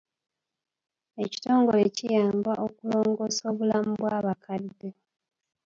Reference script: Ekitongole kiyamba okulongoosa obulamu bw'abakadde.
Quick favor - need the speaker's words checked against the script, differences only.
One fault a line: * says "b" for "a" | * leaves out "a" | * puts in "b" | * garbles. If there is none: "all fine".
all fine